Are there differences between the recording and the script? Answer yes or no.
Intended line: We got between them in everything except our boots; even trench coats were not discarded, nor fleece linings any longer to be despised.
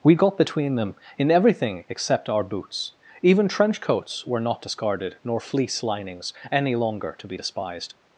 no